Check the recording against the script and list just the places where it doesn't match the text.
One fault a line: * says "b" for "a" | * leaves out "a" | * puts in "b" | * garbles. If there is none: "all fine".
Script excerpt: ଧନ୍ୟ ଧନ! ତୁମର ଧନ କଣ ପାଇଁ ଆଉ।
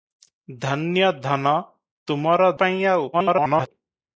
* leaves out "ଧନ କଣ"
* garbles